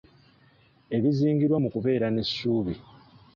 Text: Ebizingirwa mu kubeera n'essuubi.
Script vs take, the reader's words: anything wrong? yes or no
no